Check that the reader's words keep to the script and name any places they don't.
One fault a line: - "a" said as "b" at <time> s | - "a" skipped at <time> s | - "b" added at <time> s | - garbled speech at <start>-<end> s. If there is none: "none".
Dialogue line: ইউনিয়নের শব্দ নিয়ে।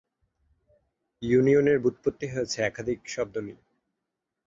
- "ব্যুৎপত্তি হয়েছে একাধিক" added at 1.8 s